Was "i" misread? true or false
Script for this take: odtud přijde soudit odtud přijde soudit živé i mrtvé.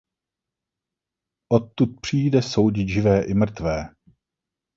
false